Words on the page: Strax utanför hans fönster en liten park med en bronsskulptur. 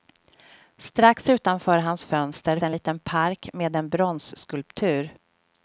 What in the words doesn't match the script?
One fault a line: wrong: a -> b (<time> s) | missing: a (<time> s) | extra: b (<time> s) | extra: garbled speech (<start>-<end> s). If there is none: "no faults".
no faults